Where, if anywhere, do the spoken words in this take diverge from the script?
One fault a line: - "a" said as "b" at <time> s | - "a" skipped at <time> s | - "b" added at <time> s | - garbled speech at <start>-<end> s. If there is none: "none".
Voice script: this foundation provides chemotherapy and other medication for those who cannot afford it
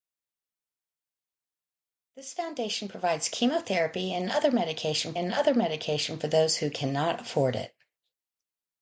- "and other medication" added at 5.1 s